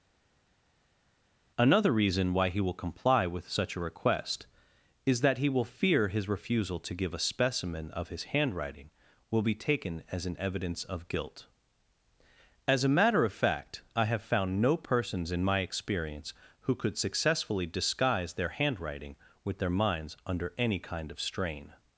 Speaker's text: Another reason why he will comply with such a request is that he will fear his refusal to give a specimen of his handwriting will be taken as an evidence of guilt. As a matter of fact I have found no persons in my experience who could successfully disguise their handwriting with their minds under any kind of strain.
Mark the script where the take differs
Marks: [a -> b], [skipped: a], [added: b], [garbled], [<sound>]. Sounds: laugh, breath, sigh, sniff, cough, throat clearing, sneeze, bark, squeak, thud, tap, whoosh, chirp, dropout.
Another reason why he will comply with such a request is that he will fear his refusal to give a specimen of his handwriting will be taken as an evidence of guilt. As a matter of fact I have found no persons in my experience who could successfully disguise their handwriting with their minds under any kind of strain.